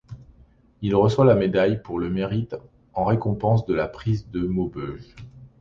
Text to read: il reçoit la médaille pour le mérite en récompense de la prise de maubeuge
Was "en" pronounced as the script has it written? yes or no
yes